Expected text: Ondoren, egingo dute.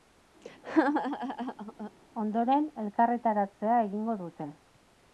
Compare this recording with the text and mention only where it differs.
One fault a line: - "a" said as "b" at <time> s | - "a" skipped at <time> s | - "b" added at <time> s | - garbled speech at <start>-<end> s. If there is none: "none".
- "elkarretaratzea" added at 2.8 s